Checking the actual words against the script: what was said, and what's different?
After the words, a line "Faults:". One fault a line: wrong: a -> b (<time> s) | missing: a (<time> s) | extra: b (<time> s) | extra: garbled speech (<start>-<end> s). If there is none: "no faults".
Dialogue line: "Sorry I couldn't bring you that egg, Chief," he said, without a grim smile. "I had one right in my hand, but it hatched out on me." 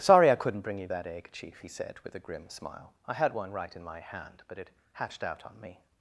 "Sorry I couldn't bring you that egg, Chief," he said, with a grim smile. "I had one right in my hand, but it hatched out on me."
Faults:
wrong: without -> with (2.1 s)